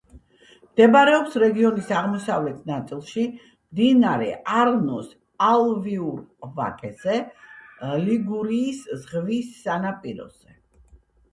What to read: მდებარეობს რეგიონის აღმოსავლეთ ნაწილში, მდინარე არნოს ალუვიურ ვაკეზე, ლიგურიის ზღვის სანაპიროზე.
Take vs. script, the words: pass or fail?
pass